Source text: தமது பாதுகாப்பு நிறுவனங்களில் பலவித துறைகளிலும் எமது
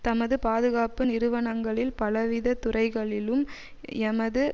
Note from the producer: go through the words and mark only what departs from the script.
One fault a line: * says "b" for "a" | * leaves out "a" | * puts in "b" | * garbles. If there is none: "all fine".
all fine